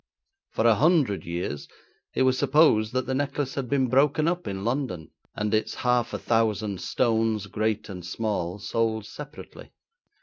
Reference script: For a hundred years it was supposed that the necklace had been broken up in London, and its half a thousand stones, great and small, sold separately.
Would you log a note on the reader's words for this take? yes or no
no